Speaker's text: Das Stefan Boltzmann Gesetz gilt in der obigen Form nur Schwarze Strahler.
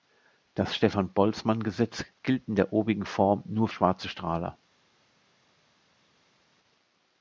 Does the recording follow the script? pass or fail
pass